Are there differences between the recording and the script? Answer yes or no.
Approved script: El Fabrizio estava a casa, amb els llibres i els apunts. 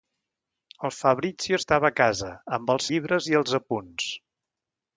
no